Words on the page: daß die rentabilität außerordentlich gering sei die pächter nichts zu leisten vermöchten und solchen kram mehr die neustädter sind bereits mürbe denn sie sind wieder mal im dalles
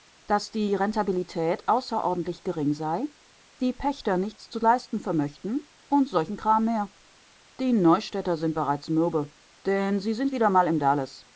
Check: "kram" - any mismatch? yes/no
no